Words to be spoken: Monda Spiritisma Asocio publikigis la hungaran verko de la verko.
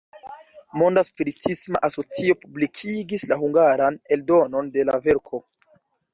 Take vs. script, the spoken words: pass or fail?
fail